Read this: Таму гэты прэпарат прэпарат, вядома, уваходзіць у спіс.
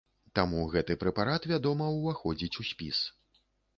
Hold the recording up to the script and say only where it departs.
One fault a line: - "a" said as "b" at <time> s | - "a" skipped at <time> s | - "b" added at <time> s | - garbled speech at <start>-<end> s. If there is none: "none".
- "прэпарат" skipped at 1.4 s